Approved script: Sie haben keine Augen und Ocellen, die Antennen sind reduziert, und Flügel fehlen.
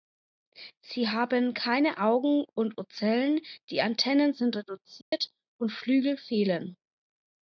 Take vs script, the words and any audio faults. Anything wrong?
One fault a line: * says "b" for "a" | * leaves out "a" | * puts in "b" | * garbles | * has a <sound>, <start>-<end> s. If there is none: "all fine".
* has a dropout, 5.0-5.1 s